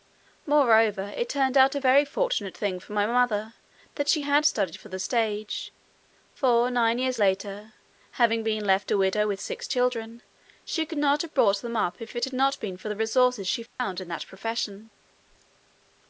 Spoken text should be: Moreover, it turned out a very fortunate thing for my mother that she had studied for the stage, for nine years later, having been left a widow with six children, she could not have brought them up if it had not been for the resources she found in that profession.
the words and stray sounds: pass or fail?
fail